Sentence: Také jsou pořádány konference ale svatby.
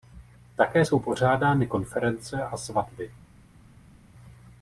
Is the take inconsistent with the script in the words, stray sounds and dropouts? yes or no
yes